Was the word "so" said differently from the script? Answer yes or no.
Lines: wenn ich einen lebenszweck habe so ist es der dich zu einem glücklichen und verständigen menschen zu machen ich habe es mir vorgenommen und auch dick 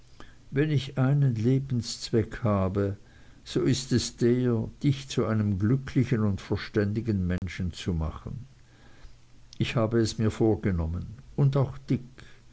no